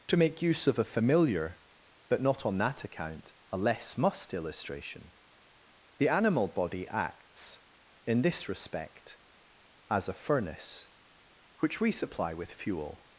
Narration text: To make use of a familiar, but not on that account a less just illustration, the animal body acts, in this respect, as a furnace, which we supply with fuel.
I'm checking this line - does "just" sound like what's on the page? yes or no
no